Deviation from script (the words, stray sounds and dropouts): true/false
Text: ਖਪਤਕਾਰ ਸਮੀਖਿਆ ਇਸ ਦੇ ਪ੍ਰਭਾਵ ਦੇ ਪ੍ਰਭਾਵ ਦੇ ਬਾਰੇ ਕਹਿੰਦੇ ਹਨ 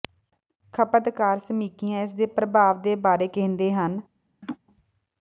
true